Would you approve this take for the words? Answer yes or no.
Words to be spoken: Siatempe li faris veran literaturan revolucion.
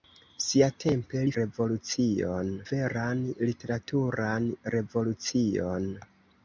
no